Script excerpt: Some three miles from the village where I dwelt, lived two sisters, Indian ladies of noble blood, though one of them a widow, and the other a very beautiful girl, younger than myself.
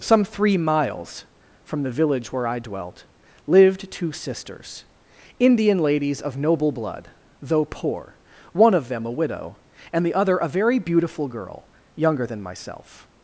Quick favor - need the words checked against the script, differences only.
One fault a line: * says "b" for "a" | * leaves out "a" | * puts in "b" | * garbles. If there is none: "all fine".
* puts in "poor"